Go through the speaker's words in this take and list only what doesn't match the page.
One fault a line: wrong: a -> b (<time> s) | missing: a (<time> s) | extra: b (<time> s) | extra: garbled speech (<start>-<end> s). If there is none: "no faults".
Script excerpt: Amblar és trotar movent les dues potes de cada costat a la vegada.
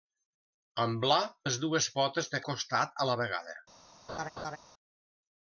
missing: és trotar movent (1.2 s)
missing: cada (2.4 s)